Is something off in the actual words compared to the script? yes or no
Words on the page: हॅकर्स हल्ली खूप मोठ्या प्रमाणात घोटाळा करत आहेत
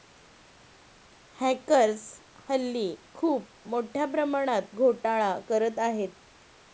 no